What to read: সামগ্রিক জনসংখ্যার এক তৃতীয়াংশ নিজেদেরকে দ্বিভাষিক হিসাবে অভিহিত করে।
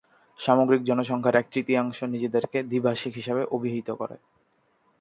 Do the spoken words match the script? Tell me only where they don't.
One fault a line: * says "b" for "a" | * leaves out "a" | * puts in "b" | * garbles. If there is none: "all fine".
all fine